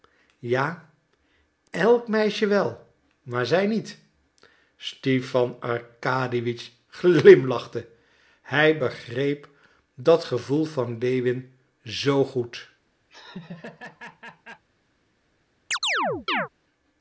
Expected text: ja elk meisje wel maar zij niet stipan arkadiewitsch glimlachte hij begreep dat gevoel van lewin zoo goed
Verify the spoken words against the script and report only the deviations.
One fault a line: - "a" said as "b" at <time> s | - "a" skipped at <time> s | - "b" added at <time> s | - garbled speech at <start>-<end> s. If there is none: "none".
none